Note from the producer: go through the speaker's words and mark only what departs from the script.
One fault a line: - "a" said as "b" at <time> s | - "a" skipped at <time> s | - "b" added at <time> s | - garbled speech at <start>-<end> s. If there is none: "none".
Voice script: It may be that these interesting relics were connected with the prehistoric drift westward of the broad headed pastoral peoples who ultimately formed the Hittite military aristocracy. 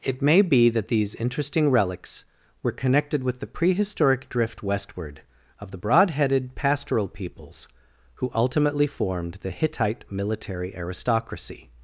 none